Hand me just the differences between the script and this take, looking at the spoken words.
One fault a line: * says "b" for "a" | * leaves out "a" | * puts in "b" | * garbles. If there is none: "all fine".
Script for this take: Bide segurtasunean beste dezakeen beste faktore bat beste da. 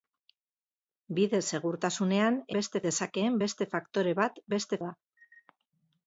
all fine